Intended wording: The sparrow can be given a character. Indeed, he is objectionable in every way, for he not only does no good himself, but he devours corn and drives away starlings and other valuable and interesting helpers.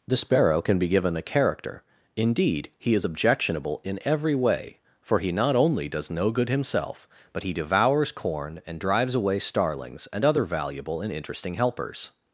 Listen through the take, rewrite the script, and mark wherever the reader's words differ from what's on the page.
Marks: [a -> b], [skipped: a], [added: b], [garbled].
The sparrow can be given a character. Indeed, he is objectionable in every way, for he not only does no good himself, but he devours corn and drives away starlings and other valuable and interesting helpers.